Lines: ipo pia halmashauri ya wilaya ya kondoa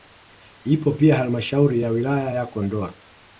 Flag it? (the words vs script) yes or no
no